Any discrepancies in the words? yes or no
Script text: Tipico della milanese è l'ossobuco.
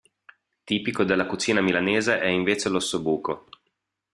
yes